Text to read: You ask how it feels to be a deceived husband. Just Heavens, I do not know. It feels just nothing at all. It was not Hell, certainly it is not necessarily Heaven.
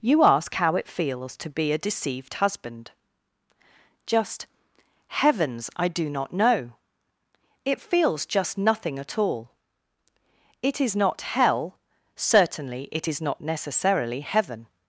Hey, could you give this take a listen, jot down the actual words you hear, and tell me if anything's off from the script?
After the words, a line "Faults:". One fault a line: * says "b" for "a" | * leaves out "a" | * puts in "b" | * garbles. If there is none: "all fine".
You ask how it feels to be a deceived husband. Just Heavens, I do not know. It feels just nothing at all. It is not Hell, certainly it is not necessarily Heaven.
Faults:
* says "is" for "was"